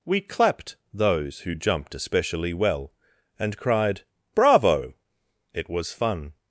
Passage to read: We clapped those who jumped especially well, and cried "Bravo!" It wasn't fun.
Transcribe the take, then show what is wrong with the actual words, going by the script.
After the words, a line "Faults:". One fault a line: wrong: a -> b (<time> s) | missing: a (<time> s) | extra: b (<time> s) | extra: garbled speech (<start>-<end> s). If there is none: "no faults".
We clapped those who jumped especially well, and cried "Bravo!" It was fun.
Faults:
wrong: wasn't -> was (5.7 s)